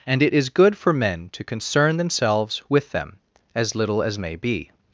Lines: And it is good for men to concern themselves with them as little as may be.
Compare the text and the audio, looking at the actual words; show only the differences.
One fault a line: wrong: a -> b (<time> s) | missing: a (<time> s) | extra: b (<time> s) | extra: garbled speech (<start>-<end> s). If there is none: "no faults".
no faults